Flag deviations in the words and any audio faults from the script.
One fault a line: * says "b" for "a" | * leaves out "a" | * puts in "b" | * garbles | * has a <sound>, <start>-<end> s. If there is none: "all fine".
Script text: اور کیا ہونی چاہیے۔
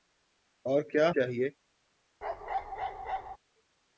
* leaves out "ہونی"
* has a bark, 2.2-3.4 s